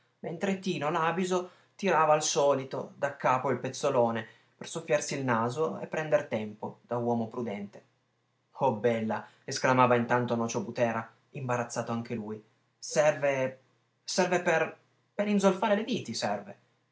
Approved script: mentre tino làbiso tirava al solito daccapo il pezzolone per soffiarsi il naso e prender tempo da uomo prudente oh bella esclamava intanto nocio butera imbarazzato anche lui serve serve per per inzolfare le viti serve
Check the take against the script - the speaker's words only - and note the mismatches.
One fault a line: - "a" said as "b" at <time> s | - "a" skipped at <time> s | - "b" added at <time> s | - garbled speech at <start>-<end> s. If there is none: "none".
none